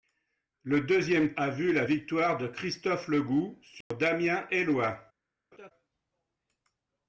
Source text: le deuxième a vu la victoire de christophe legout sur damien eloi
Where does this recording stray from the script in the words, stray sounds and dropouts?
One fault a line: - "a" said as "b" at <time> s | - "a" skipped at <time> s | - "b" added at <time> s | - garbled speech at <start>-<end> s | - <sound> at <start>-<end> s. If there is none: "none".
- dropout at 3.8-3.9 s
- laugh at 5.5-5.7 s